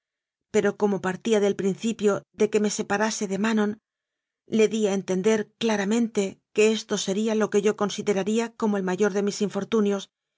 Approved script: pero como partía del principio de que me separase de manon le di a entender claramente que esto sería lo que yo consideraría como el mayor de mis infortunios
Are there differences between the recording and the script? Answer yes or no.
no